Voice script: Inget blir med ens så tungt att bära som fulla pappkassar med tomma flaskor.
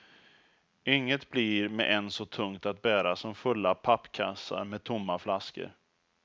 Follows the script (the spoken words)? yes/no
yes